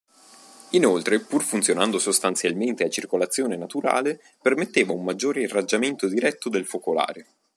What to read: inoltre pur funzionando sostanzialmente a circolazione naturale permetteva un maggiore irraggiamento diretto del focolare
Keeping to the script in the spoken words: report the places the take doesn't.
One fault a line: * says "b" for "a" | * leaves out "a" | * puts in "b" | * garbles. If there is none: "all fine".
all fine